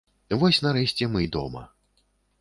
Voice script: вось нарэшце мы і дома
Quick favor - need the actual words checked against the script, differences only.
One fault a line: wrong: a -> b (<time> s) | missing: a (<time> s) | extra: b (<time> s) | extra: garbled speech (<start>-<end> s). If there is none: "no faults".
no faults